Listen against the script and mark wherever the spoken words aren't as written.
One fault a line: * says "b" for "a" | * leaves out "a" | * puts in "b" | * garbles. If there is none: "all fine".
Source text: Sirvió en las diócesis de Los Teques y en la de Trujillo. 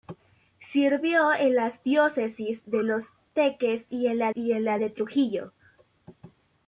* puts in "y en la"